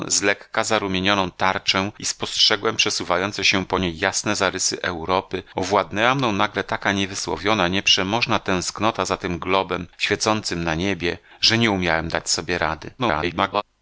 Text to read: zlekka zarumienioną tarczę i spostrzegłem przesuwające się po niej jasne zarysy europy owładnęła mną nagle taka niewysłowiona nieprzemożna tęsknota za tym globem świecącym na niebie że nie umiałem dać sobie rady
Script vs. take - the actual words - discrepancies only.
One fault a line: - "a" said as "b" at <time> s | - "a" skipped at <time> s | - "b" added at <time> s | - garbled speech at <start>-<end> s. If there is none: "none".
- garbled speech at 13.0-13.6 s